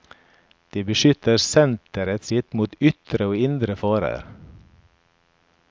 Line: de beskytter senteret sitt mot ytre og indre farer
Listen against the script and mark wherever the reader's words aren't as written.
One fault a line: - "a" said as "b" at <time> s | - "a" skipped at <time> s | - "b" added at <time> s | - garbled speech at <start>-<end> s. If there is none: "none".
none